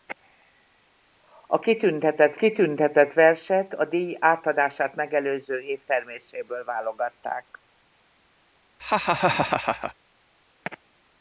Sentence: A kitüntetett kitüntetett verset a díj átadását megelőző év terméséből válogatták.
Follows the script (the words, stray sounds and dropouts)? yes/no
no